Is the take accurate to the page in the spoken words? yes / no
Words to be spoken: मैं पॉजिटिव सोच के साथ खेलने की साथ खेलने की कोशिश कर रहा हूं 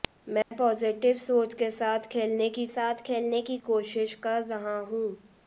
yes